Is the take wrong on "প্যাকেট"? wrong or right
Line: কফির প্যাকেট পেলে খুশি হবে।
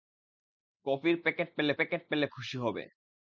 right